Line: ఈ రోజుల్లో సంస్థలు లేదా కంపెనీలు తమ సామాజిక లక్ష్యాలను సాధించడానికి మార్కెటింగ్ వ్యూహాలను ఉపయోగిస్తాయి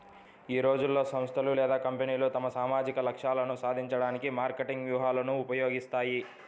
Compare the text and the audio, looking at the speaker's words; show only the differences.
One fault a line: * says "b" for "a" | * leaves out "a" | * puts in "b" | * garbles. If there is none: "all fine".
all fine